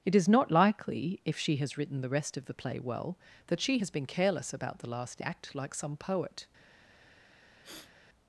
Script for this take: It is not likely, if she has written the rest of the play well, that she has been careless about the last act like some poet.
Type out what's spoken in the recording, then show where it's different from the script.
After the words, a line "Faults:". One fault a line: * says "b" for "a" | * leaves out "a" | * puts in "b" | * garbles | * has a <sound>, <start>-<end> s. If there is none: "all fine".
It is not likely, if she has written the rest of the play well, that she has been careless about the last act like some poet.
Faults:
* has a sniff, 7.6-7.9 s